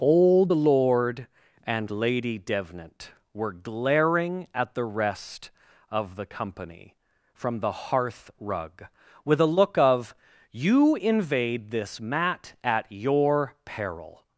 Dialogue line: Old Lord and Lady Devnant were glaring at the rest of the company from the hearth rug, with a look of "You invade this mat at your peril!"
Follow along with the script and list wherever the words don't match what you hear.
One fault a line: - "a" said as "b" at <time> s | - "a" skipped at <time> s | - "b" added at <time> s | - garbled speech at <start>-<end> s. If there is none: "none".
none